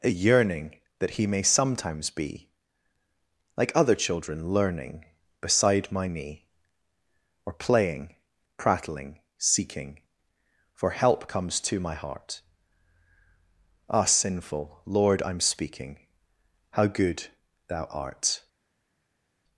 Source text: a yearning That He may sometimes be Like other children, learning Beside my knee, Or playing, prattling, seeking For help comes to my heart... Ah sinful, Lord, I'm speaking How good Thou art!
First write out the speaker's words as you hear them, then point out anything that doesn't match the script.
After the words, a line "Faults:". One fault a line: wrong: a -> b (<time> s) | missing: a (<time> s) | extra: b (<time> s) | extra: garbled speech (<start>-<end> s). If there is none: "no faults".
a yearning That He may sometimes be Like other children, learning Beside my knee, Or playing, prattling, seeking For help comes to my heart... Ah sinful, Lord, I'm speaking How good Thou art!
Faults:
no faults